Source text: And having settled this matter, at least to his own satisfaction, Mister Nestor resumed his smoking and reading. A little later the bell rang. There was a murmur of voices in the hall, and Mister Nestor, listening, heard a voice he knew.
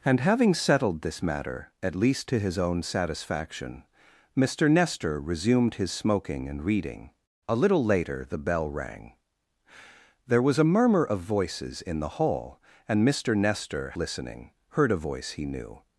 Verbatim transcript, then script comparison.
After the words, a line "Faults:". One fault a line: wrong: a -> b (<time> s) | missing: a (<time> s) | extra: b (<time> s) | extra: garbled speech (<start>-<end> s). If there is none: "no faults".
And having settled this matter, at least to his own satisfaction, Mister Nestor resumed his smoking and reading. A little later the bell rang. There was a murmur of voices in the hall, and Mister Nestor, listening, heard a voice he knew.
Faults:
no faults